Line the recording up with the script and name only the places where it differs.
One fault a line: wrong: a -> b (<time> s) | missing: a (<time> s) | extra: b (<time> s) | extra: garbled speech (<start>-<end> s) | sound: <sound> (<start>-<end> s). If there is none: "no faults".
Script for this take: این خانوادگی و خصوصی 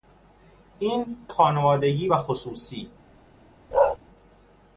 sound: bark (3.7-4.0 s)